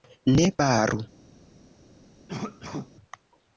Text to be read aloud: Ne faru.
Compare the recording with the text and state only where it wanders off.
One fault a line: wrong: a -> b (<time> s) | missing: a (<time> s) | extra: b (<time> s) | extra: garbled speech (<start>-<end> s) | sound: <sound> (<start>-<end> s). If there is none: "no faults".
sound: cough (2.3-2.9 s)